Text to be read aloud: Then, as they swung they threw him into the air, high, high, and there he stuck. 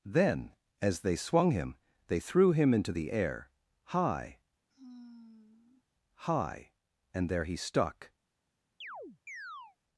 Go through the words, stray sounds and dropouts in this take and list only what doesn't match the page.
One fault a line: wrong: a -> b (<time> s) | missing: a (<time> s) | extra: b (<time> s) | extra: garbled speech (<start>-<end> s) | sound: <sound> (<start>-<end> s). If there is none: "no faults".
extra: him (1.5 s)
sound: sigh (4.7-5.8 s)
sound: chirp (8.8-9.8 s)